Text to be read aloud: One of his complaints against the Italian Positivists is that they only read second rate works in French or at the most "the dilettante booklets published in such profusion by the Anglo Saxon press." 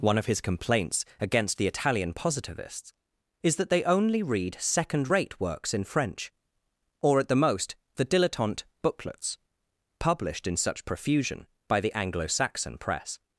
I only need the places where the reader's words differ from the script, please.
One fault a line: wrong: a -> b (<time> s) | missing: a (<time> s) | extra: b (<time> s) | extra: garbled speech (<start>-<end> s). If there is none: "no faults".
no faults